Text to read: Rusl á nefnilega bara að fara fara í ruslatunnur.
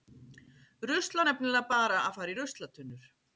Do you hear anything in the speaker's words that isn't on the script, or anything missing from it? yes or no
yes